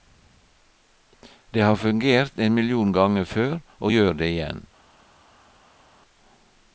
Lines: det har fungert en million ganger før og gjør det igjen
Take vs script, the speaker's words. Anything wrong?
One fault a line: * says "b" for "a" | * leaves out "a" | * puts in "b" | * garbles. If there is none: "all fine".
all fine